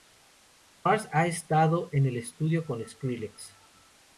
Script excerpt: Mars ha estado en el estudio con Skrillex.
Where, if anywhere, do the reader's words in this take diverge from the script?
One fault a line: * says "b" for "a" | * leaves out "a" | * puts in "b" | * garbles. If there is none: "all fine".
all fine